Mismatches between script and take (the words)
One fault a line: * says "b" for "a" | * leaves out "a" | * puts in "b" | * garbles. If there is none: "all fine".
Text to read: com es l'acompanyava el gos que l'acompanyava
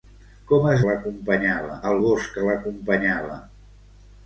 all fine